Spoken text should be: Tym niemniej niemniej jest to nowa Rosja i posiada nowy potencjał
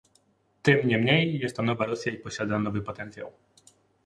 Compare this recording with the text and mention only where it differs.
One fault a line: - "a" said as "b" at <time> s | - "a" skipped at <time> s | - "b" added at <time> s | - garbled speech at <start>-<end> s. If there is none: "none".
- "niemniej" skipped at 1.4 s